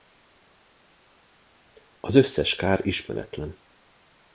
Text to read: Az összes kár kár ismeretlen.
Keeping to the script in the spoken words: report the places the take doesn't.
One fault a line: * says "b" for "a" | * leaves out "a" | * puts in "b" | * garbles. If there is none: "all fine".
* leaves out "kár"